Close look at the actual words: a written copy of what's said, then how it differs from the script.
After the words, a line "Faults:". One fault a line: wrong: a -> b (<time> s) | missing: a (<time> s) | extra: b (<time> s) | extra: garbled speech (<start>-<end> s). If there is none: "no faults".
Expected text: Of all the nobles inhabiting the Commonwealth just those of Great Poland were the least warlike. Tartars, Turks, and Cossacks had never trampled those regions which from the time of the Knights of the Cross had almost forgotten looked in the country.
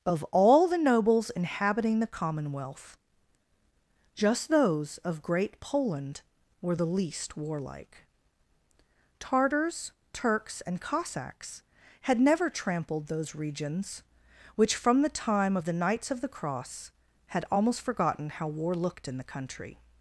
Of all the nobles inhabiting the Commonwealth just those of Great Poland were the least warlike. Tartars, Turks, and Cossacks had never trampled those regions which from the time of the Knights of the Cross had almost forgotten how war looked in the country.
Faults:
extra: how war (18.3 s)